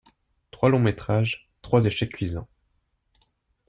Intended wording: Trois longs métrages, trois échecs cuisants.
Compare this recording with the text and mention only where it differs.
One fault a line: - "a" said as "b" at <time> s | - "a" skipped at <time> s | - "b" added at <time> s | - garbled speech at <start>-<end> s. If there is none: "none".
none